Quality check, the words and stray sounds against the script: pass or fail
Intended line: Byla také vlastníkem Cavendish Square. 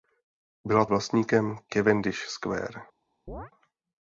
fail